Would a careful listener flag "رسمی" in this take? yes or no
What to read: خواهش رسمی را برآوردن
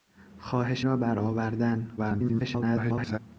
yes